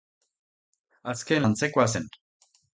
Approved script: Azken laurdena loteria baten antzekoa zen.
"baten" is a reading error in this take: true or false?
true